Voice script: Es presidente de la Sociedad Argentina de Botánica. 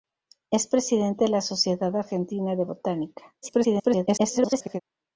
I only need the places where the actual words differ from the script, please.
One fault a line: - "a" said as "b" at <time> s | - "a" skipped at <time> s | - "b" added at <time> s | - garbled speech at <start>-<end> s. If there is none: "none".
- garbled speech at 3.4-4.8 s